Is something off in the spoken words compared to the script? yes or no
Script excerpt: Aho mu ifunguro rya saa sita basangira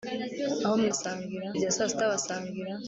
yes